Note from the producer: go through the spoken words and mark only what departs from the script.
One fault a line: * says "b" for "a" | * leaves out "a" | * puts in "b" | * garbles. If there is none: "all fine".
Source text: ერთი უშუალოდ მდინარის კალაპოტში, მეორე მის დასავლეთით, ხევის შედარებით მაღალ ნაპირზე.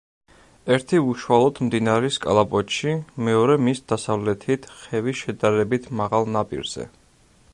all fine